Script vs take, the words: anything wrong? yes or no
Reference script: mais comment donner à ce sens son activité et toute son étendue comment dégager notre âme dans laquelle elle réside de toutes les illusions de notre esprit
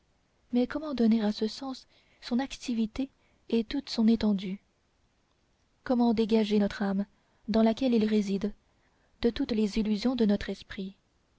yes